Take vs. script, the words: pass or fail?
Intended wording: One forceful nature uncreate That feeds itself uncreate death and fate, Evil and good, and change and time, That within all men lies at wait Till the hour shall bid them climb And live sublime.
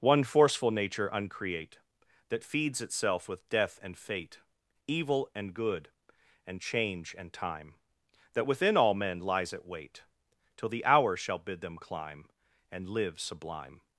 fail